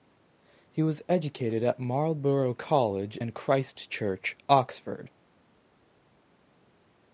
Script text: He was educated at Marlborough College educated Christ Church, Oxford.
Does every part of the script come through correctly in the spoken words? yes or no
no